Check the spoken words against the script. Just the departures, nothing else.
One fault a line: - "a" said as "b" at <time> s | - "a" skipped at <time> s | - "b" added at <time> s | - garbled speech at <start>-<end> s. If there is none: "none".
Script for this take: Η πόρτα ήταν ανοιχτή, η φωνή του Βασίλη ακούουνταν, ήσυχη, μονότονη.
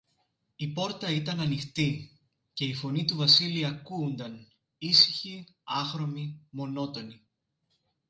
- "και" added at 2.5 s
- "άχρωμη" added at 5.6 s